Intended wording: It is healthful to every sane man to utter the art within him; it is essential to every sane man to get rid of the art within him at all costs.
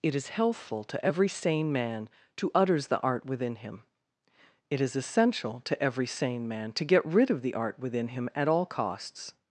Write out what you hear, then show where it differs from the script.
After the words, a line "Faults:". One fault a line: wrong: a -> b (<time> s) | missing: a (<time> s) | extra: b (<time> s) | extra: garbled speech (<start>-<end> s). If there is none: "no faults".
It is healthful to every sane man to utters the art within him; it is essential to every sane man to get rid of the art within him at all costs.
Faults:
wrong: utter -> utters (2.5 s)